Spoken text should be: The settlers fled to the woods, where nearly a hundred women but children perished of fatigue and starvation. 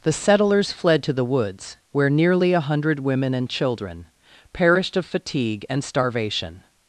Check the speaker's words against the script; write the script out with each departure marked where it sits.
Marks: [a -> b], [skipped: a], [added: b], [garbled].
The settlers fled to the woods, where nearly a hundred women [but -> and] children perished of fatigue and starvation.